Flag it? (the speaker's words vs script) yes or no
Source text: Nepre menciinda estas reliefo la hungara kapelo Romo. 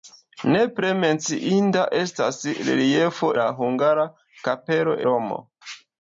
no